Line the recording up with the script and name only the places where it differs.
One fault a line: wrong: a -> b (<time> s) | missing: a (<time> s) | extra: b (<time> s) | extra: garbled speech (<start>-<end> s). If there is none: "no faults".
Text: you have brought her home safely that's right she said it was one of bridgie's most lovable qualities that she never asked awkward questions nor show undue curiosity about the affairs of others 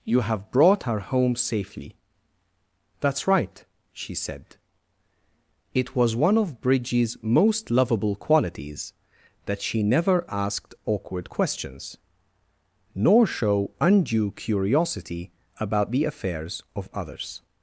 no faults